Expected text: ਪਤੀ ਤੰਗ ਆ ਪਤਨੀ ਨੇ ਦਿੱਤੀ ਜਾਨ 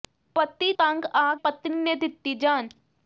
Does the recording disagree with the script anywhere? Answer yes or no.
no